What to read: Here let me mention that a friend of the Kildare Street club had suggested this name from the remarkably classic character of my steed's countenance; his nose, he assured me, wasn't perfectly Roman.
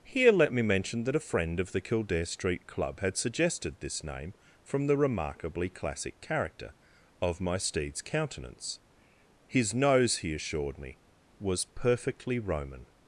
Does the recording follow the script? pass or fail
fail